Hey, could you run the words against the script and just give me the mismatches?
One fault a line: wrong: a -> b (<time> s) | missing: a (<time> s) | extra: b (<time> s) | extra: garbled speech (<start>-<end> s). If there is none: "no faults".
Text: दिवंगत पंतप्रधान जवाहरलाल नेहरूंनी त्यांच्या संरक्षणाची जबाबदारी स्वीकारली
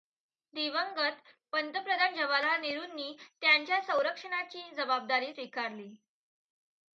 no faults